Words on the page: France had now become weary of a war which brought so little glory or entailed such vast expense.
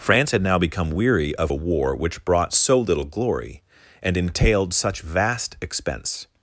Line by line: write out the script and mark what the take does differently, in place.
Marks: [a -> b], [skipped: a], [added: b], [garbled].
France had now become weary of a war which brought so little glory [or -> and] entailed such vast expense.